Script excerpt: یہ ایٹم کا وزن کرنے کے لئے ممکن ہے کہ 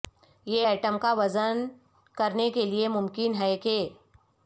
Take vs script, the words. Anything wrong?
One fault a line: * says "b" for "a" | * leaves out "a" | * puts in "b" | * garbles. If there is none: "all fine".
all fine